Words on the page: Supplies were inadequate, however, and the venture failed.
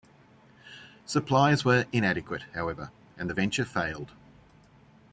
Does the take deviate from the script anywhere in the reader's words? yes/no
no